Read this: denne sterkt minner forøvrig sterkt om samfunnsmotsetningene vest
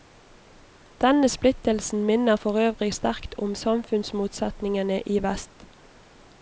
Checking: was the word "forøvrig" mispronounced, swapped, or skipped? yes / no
no